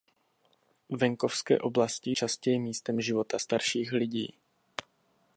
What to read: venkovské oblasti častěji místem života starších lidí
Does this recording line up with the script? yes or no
yes